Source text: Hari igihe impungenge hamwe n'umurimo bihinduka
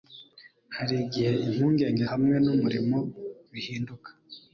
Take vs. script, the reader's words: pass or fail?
pass